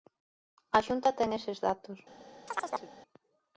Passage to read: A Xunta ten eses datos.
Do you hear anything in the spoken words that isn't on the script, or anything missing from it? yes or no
no